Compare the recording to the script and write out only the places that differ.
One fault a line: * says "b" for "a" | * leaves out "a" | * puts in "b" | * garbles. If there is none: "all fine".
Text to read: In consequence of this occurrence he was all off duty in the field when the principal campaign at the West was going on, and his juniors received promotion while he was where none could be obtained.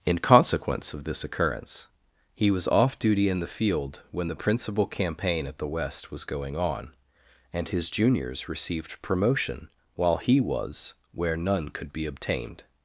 * leaves out "all"